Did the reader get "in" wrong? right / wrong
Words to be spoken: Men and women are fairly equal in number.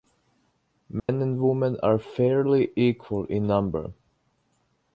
right